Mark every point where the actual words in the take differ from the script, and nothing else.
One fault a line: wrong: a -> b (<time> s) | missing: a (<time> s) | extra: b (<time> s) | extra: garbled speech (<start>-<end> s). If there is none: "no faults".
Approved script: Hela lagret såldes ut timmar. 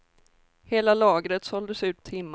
no faults